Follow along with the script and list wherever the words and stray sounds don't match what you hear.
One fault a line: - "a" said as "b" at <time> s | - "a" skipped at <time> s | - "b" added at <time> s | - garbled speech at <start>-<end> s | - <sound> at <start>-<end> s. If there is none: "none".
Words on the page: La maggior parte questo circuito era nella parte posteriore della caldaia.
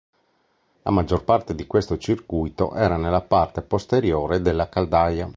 - "di" added at 1.5 s